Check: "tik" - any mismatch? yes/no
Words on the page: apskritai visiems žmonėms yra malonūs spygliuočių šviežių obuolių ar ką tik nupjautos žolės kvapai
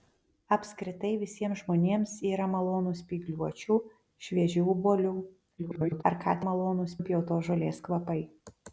yes